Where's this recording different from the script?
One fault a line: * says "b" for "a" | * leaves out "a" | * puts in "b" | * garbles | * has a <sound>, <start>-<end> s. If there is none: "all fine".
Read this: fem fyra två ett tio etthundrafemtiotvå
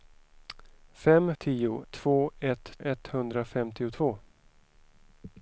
* says "tio" for "fyra"
* leaves out "tio"